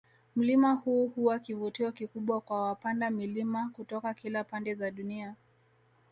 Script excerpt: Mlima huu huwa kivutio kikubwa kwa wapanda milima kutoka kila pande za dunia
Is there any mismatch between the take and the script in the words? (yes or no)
no